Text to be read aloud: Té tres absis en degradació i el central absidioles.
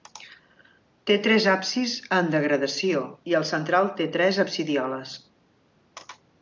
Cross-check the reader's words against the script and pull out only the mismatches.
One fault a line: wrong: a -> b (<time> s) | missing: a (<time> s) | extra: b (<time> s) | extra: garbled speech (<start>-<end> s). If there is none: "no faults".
extra: té tres (4.0 s)